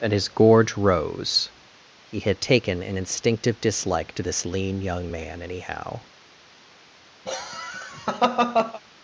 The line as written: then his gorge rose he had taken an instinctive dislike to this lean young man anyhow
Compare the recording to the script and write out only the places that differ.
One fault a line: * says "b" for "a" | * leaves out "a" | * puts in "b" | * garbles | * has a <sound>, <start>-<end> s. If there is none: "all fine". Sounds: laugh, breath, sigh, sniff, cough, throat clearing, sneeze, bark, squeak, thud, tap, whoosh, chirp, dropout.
* says "and" for "then"
* has a laugh, 7.3-8.8 s